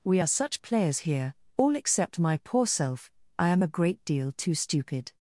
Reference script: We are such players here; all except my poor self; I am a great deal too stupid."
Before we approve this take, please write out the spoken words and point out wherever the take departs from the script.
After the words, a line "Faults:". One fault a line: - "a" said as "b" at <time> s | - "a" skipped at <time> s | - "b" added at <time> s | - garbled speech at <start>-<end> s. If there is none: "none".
We are such players here; all except my poor self; I am a great deal too stupid."
Faults:
none